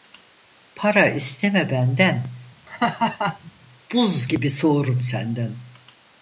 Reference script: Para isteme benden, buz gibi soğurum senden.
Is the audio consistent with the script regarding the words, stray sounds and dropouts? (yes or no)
no